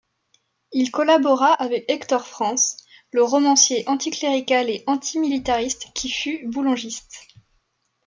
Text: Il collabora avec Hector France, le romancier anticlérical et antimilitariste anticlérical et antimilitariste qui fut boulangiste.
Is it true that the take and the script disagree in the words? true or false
true